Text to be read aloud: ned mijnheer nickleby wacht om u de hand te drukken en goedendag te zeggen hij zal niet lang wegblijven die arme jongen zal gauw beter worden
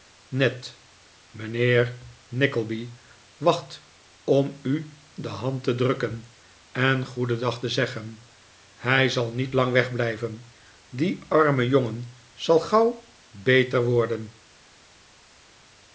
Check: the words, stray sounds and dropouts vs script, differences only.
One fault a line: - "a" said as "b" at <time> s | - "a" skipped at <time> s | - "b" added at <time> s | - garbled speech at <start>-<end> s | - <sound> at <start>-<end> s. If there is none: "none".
none